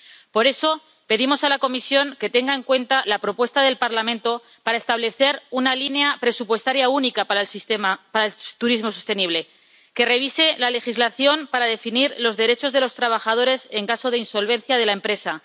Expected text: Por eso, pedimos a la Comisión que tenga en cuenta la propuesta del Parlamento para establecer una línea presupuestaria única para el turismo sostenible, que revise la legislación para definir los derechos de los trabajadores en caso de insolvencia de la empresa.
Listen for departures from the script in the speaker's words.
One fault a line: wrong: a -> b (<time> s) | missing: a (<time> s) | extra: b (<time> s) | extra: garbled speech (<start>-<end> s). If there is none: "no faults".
no faults